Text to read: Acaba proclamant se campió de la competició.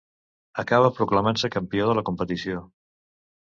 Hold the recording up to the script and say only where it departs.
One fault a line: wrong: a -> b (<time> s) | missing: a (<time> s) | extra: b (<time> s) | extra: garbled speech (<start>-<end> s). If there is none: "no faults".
no faults